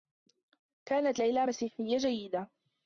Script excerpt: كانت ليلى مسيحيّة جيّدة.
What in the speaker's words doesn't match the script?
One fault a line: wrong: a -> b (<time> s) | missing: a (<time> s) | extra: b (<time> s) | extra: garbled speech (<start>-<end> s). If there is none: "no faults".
no faults